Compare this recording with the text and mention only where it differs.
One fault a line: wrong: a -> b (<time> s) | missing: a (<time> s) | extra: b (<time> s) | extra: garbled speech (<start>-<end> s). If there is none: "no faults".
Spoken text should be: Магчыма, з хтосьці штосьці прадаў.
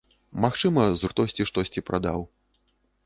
no faults